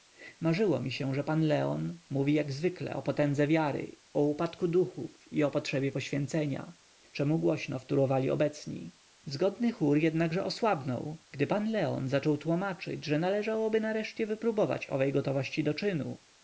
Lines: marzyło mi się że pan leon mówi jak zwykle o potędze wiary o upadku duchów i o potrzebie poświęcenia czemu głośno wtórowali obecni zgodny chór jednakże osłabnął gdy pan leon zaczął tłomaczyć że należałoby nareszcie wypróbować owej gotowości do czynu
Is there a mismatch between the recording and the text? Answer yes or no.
no